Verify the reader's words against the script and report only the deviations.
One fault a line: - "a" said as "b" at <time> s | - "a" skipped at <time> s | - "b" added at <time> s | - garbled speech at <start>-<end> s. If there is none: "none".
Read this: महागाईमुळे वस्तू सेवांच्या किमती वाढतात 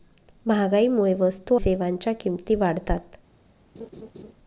none